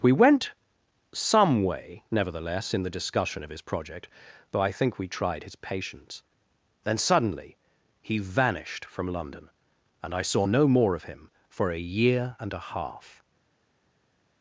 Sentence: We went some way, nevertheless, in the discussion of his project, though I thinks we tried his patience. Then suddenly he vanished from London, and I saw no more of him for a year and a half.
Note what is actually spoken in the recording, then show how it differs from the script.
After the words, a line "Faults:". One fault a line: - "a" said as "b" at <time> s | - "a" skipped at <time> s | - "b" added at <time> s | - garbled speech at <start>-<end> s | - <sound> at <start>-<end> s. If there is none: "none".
We went some way, nevertheless, in the discussion of his project, though I think we tried his patience. Then suddenly he vanished from London, and I saw no more of him for a year and a half.
Faults:
- "thinks" said as "think" at 4.7 s